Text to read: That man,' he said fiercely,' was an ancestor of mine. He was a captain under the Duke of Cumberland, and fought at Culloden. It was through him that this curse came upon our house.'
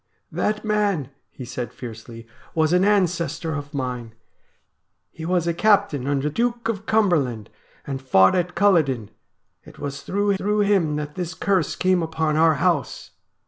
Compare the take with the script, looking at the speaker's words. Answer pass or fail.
fail